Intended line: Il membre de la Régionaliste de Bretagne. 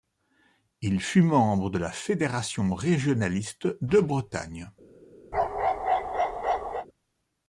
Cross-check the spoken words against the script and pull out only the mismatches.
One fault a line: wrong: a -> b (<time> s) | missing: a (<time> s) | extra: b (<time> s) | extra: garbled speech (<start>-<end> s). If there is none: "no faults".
extra: fut (1.0 s)
extra: Fédération (1.9 s)